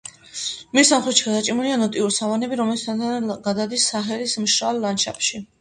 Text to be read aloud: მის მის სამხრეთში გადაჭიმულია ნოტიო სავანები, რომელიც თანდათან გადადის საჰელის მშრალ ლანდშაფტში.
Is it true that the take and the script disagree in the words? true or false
true